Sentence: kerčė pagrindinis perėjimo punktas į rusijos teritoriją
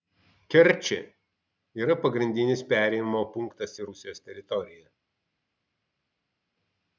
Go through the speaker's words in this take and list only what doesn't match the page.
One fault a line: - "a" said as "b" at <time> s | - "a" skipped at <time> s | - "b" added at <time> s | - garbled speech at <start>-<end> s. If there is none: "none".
- "yra" added at 1.8 s